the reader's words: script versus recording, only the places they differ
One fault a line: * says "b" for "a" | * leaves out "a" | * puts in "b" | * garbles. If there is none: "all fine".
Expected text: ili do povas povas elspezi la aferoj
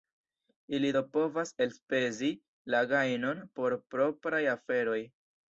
* leaves out "povas"
* puts in "gajnon por propraj"